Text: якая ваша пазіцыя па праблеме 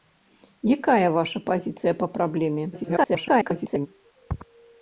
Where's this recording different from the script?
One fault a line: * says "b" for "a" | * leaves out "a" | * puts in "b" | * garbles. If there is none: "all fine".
* garbles